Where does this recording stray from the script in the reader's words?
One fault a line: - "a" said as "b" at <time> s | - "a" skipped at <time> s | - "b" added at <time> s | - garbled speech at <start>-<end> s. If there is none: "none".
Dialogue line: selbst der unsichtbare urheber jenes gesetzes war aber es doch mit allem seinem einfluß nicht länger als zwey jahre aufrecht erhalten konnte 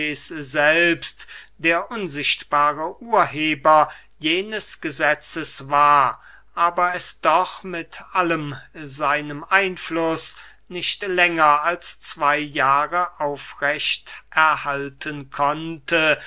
none